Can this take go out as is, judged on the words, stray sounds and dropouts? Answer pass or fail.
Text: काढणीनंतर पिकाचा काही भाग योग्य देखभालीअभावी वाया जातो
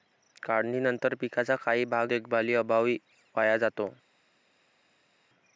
fail